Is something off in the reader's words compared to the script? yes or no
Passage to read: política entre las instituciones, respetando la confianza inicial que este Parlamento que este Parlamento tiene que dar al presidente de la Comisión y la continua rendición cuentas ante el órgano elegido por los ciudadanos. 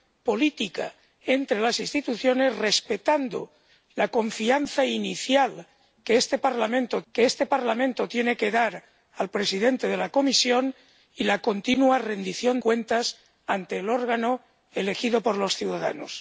no